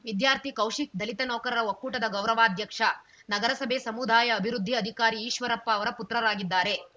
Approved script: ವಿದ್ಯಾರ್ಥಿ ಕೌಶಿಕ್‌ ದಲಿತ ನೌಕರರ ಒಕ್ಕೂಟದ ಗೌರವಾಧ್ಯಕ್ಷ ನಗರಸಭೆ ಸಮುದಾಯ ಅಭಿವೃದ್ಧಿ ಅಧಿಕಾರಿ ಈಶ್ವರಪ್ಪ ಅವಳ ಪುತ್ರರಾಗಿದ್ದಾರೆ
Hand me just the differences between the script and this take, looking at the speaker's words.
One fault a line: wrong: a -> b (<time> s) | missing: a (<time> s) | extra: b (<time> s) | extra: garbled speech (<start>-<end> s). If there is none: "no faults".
wrong: ಅವಳ -> ಅವರ (5.7 s)